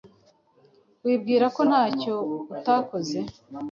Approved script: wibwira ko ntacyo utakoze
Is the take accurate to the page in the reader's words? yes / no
yes